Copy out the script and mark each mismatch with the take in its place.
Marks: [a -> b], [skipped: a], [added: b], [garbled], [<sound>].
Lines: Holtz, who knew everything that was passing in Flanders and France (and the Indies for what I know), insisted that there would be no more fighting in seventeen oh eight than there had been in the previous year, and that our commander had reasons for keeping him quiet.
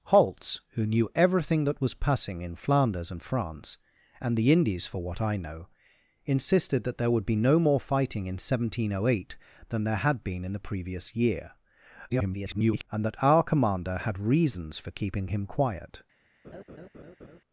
Holtz, who knew everything that was passing in Flanders and France (and the Indies for what I know), insisted that there would be no more fighting in seventeen oh eight than there had been in the previous year, [garbled] and that our commander had reasons for keeping him quiet. [laugh]